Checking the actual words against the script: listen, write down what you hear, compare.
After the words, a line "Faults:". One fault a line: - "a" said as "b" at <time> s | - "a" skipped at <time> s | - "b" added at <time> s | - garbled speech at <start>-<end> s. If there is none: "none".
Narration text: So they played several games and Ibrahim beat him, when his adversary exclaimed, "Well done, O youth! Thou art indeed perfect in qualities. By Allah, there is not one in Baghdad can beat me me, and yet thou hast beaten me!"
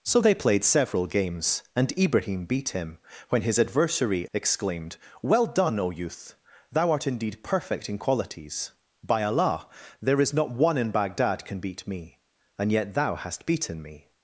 So they played several games and Ibrahim beat him, when his adversary exclaimed, "Well done, O youth! Thou art indeed perfect in qualities. By Allah, there is not one in Baghdad can beat me, and yet thou hast beaten me!"
Faults:
- "me" skipped at 12.2 s